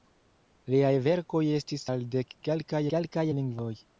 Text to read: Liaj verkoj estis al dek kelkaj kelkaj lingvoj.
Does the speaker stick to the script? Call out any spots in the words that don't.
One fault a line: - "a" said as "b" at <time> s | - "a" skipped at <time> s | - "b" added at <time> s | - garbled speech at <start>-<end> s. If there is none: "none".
none